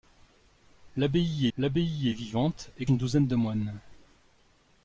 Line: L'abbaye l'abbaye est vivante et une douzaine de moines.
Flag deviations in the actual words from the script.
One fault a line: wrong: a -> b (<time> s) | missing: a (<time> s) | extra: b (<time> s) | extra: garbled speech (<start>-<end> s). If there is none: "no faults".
no faults